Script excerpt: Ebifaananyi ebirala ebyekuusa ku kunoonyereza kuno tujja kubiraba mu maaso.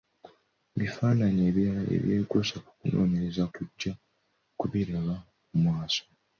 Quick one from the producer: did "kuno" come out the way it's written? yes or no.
no